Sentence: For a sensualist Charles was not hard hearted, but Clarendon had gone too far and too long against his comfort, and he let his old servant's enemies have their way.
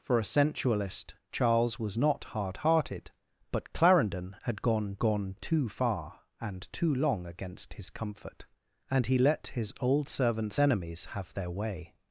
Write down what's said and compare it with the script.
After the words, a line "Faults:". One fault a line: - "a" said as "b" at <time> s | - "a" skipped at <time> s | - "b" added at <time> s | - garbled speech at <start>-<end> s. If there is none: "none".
For a sensualist Charles was not hard hearted, but Clarendon had gone gone too far and too long against his comfort, and he let his old servant's enemies have their way.
Faults:
- "gone" added at 5.0 s